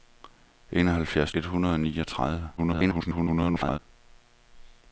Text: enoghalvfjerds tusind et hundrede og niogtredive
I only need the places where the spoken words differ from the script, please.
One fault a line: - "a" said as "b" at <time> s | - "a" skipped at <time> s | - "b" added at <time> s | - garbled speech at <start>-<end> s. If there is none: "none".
- "tusind" skipped at 1.3 s
- garbled speech at 2.6-3.8 s